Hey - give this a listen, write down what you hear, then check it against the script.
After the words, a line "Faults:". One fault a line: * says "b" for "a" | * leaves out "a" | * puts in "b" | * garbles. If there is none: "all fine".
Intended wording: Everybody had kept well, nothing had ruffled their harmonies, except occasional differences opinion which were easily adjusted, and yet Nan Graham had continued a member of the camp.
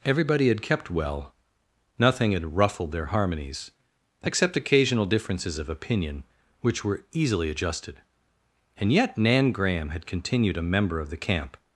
Everybody had kept well, nothing had ruffled their harmonies, except occasional differences of opinion which were easily adjusted, and yet Nan Graham had continued a member of the camp.
Faults:
* puts in "of"